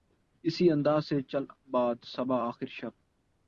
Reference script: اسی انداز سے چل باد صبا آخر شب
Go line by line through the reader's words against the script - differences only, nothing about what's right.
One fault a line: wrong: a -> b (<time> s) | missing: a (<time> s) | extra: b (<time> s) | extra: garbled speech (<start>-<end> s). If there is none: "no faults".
no faults